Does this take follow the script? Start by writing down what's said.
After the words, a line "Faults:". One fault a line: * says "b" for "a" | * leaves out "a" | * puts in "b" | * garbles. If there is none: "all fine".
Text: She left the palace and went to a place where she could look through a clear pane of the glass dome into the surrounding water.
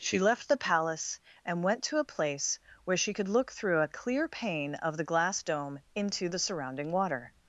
She left the palace and went to a place where she could look through a clear pane of the glass dome into the surrounding water.
Faults:
all fine